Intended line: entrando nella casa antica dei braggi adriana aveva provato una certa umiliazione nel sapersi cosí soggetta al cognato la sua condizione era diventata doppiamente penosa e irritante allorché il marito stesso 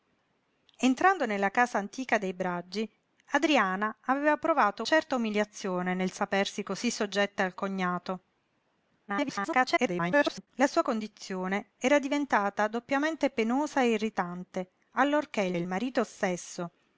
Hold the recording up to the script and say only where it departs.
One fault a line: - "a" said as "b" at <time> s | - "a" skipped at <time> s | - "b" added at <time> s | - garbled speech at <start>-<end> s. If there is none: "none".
- "una" skipped at 4.8 s
- garbled speech at 9.1-10.5 s
- "il" added at 15.5 s